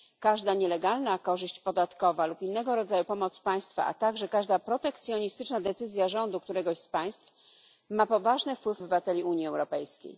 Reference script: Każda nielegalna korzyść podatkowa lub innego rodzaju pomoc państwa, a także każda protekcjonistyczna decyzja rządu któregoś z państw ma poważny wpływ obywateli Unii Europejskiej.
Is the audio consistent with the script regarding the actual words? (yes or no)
yes